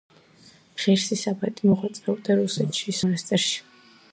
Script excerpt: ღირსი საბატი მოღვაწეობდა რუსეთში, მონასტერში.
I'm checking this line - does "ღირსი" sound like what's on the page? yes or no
yes